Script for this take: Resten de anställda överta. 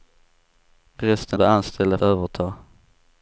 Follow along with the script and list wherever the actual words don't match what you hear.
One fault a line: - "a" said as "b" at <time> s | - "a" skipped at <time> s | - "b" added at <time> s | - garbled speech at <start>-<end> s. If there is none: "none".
none